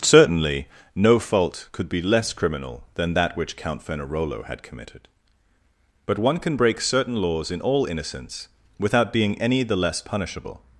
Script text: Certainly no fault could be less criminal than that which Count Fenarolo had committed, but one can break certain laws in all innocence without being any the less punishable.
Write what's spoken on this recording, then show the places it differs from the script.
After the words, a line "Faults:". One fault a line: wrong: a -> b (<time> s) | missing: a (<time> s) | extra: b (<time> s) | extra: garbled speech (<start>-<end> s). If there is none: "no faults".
Certainly no fault could be less criminal than that which Count Fenarolo had committed, but one can break certain laws in all innocence without being any the less punishable.
Faults:
no faults